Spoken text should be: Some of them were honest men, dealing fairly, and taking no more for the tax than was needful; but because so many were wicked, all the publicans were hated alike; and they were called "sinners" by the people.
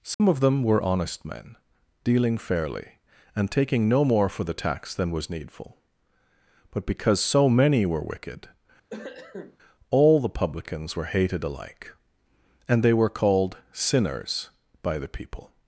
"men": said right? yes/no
yes